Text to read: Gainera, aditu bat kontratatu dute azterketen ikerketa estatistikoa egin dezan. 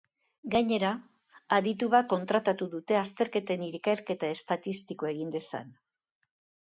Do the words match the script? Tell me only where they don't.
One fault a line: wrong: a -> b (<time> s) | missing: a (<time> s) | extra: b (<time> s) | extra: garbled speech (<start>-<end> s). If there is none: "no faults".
no faults